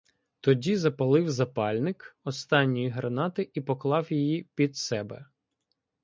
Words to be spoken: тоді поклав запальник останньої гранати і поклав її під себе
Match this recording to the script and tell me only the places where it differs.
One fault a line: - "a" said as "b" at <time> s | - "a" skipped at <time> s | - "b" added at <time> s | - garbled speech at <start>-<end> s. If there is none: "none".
- "поклав" said as "запалив" at 0.8 s